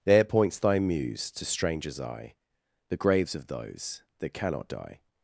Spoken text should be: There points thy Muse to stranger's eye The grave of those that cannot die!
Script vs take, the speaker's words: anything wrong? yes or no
yes